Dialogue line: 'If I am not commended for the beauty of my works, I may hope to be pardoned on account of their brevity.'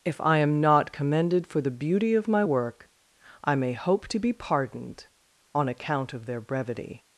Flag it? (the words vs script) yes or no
yes